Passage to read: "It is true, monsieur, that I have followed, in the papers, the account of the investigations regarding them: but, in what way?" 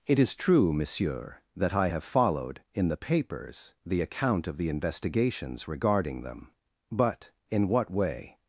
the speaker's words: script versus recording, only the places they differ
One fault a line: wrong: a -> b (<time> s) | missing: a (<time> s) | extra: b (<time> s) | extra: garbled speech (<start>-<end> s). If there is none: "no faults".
no faults